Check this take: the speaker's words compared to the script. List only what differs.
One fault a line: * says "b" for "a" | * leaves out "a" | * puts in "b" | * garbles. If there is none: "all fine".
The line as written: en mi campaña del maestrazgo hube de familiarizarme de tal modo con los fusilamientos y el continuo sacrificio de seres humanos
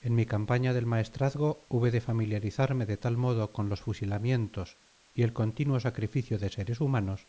all fine